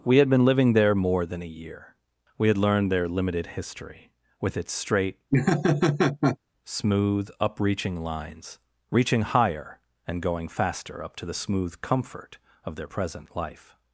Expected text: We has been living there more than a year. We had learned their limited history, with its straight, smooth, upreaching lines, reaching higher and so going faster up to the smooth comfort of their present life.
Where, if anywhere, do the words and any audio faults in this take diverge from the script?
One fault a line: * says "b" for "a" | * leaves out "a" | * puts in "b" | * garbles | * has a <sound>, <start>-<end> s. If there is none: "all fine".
* says "had" for "has"
* has a laugh, 5.3-6.4 s
* leaves out "so"